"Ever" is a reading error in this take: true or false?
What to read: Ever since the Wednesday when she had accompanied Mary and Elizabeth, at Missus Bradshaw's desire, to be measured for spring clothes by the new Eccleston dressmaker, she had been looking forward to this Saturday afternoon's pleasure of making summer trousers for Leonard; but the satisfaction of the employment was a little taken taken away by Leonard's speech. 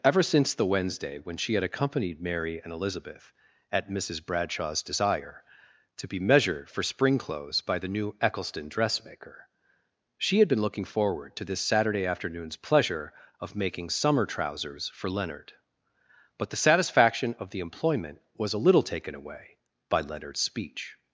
false